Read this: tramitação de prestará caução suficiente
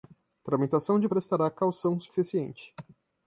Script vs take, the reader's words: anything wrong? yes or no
no